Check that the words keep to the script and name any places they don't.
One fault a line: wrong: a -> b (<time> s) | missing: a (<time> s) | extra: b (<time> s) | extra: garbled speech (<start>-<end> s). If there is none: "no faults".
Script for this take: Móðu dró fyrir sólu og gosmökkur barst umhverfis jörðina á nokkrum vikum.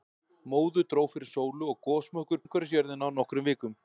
missing: barst (2.4 s)